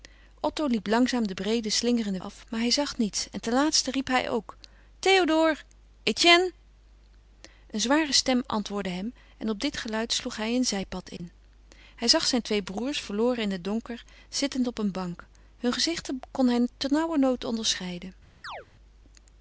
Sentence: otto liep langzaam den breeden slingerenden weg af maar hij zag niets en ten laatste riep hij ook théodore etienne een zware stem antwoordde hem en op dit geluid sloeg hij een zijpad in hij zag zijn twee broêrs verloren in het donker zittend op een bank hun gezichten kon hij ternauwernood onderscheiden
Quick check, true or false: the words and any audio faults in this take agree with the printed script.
false